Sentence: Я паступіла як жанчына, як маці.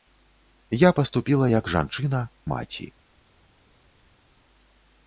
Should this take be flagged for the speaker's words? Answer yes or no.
yes